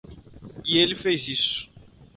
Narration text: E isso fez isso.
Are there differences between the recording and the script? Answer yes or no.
yes